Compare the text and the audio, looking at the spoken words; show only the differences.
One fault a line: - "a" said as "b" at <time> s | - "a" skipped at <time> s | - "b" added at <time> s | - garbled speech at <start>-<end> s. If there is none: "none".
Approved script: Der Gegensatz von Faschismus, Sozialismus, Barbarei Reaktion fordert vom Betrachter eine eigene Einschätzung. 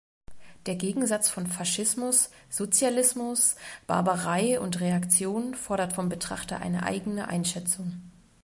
- "und" added at 4.6 s